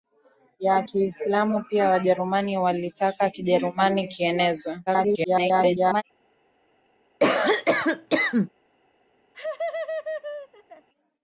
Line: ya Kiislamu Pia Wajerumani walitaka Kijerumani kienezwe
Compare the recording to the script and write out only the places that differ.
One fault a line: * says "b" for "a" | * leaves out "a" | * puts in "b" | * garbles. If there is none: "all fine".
* garbles